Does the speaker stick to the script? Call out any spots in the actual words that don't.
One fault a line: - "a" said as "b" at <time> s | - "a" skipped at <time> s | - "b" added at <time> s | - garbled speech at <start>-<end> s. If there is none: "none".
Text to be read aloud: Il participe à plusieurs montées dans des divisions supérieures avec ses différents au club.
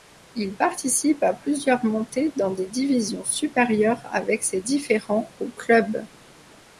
none